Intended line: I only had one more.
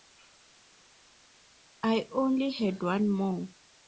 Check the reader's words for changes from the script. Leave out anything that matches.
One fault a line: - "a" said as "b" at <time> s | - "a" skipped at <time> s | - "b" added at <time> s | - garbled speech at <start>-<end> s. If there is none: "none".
none